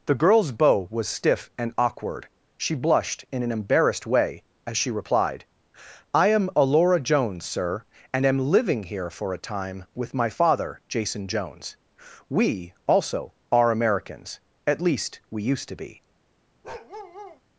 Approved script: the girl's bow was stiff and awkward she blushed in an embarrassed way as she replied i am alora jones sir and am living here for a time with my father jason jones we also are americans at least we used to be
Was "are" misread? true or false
false